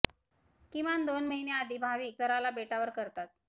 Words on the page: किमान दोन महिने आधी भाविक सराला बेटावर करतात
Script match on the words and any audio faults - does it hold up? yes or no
yes